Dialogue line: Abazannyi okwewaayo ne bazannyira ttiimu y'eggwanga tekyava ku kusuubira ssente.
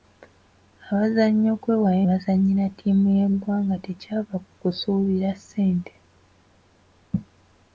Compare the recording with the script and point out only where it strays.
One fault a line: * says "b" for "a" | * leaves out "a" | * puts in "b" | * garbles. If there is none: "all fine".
* leaves out "ne"